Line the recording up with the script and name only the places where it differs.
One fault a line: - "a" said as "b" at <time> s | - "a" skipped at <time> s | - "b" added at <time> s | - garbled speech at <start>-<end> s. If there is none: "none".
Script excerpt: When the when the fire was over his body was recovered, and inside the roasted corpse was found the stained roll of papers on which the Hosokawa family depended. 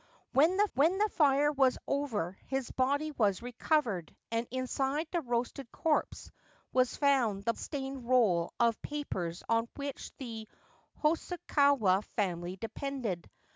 none